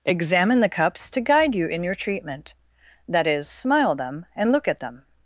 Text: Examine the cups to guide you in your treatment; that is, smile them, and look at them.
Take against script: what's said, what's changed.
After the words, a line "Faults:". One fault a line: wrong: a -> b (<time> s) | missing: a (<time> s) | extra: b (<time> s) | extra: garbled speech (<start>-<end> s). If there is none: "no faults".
Examine the cups to guide you in your treatment; that is, smile them, and look at them.
Faults:
no faults